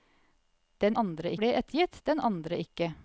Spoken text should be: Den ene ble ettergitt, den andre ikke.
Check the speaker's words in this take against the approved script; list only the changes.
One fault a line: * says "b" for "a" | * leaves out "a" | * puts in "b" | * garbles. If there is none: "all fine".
* says "andre" for "ene"